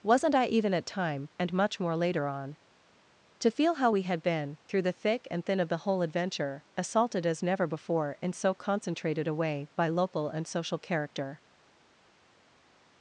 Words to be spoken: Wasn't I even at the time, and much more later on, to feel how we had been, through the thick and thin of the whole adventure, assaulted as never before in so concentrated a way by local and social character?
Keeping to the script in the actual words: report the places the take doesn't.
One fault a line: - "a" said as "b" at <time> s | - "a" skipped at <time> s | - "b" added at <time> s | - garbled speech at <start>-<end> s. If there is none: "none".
- "the" skipped at 0.8 s